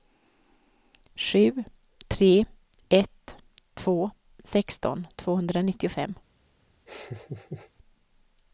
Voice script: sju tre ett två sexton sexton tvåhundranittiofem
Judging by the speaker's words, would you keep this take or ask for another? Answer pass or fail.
fail